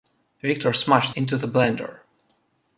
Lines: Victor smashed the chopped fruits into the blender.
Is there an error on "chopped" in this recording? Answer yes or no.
yes